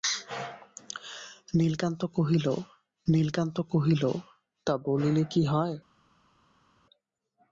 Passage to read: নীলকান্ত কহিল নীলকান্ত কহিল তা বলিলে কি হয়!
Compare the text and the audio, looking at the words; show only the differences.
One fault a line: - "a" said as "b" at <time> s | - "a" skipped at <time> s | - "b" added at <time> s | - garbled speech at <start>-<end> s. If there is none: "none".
none